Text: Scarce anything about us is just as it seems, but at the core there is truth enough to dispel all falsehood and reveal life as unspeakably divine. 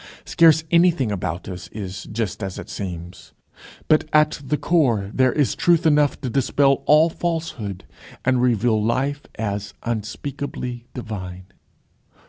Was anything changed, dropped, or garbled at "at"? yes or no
no